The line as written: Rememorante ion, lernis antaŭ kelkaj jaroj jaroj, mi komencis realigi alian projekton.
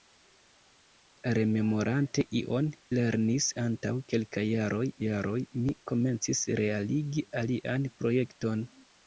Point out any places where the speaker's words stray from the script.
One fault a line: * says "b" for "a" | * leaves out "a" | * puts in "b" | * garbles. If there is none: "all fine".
all fine